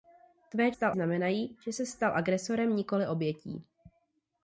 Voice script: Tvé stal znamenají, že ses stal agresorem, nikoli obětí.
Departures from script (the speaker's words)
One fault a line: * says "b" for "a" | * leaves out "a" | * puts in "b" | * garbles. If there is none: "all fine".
all fine